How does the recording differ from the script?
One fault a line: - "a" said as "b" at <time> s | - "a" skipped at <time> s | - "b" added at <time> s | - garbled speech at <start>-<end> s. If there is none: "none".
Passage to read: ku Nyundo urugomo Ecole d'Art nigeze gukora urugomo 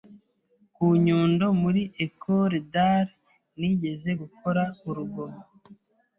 - "urugomo" said as "muri" at 1.6 s